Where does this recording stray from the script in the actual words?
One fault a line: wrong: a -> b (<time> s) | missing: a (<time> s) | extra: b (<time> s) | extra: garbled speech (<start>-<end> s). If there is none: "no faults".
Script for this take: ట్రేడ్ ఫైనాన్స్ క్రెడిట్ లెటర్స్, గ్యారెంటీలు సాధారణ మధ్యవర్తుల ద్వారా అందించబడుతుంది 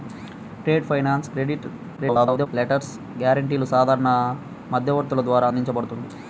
extra: garbled speech (2.0-2.5 s)